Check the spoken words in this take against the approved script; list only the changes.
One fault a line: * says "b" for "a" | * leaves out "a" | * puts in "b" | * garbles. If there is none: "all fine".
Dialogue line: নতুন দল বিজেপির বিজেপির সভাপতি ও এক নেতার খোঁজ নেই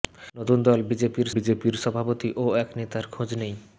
all fine